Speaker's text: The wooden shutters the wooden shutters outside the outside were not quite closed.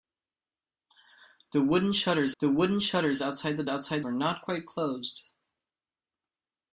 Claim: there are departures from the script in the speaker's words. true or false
false